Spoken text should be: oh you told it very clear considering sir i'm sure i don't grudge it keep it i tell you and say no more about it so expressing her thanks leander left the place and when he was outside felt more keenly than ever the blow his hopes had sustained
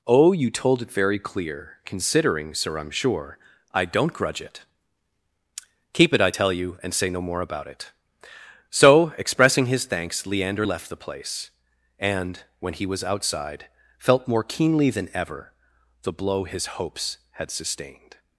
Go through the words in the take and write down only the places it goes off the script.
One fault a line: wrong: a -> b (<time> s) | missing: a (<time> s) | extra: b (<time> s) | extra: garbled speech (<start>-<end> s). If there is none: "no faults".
wrong: her -> his (9.7 s)